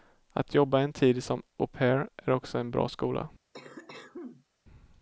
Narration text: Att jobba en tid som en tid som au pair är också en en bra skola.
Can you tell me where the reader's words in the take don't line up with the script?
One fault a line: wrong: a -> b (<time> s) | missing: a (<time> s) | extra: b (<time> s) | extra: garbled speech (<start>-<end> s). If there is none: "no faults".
missing: en tid som (1.4 s)
missing: en (2.7 s)